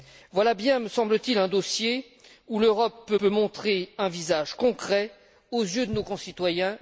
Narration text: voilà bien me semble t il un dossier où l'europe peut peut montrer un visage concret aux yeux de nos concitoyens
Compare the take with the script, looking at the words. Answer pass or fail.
pass